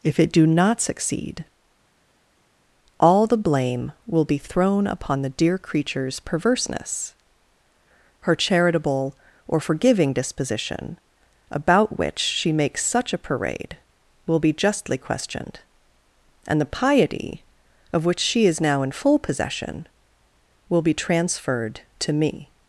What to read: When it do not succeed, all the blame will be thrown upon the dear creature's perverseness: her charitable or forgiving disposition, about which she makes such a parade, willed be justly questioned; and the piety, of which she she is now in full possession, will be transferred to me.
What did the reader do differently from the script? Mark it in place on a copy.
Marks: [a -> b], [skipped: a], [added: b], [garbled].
[When -> If] it do not succeed, all the blame will be thrown upon the dear creature's perverseness: her charitable or forgiving disposition, about which she makes such a parade, [willed -> will] be justly questioned; and the piety, of which she [skipped: she] is now in full possession, will be transferred to me.